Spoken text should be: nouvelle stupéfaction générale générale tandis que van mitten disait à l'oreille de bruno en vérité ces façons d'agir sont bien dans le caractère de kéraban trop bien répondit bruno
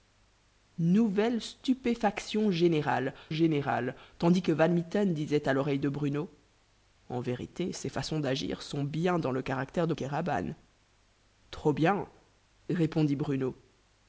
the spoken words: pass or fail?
pass